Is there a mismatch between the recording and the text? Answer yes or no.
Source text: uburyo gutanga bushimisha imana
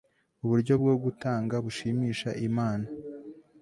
yes